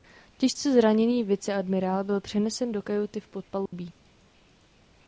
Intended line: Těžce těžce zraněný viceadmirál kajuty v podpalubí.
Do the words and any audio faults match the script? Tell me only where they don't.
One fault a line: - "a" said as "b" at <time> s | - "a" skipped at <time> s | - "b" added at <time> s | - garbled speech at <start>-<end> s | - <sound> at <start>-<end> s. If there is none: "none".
- "těžce" skipped at 0.7 s
- "byl přenesen do" added at 2.0 s
- dropout at 3.7-3.7 s